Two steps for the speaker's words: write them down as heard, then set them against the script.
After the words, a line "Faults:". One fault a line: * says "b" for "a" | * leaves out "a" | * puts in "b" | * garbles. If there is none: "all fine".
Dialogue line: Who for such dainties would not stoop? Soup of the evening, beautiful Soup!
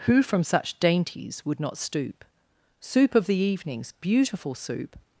Who from such dainties would not stoop? Soup of the evenings, beautiful Soup!
Faults:
* says "from" for "for"
* says "evenings" for "evening"